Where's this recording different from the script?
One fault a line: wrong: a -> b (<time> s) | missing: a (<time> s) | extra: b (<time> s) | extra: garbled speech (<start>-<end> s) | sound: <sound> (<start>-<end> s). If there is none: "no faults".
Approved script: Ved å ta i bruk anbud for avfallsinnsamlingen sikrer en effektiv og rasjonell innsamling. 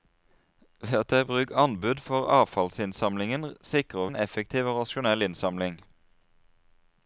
no faults